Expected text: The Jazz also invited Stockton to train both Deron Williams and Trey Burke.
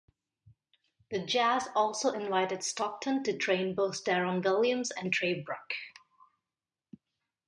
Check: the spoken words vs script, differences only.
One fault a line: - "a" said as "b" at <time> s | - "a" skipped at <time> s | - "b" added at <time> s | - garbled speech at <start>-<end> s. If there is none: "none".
none